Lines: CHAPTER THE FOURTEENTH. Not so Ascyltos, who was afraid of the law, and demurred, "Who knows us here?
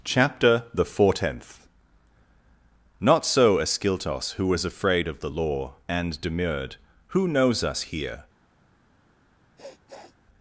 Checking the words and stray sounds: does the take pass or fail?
fail